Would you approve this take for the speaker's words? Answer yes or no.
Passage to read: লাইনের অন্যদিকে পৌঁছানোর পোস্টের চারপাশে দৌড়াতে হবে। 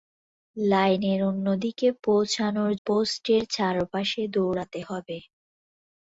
yes